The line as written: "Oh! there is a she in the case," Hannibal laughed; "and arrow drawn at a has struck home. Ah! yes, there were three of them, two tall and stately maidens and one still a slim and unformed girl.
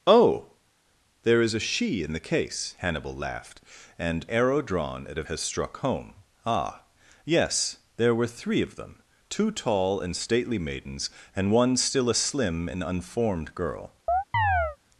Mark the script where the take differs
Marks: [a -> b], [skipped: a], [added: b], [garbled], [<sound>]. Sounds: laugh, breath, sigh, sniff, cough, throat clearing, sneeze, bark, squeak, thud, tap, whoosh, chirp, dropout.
"Oh! there is a she in the case," Hannibal laughed; "and arrow drawn at a has struck home. Ah! yes, there were three of them, two tall and stately maidens and one still a slim and unformed girl. [chirp]